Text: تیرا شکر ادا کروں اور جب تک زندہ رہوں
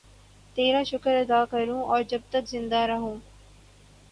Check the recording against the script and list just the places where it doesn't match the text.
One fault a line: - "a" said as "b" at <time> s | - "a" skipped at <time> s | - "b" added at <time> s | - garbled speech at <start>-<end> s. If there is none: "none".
none